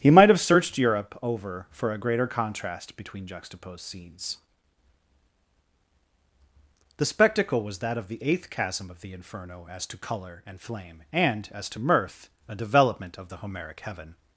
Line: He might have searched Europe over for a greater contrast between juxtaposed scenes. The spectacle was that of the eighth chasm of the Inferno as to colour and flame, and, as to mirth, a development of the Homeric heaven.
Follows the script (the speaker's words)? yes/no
yes